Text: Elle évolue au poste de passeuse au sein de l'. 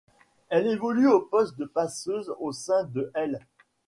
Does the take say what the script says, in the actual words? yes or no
yes